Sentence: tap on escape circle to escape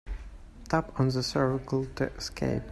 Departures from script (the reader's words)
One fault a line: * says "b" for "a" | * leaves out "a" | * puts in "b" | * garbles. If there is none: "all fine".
* says "the" for "escape"